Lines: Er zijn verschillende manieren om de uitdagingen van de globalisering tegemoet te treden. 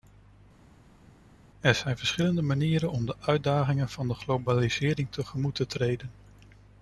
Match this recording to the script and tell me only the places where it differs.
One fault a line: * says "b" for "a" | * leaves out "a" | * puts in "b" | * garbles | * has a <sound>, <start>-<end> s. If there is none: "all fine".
all fine